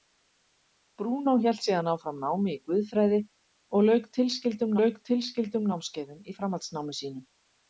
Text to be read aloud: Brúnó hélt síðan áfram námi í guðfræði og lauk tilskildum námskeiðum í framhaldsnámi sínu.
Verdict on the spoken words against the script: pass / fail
fail